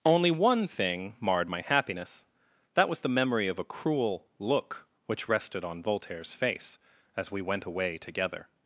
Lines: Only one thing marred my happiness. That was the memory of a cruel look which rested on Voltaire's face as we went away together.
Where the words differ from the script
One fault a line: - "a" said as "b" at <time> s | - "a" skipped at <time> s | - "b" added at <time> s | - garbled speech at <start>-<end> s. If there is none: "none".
none